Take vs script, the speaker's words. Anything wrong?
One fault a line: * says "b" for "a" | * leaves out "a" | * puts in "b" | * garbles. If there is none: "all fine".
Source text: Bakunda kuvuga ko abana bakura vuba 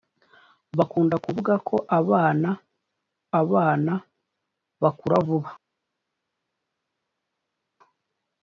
* puts in "abana"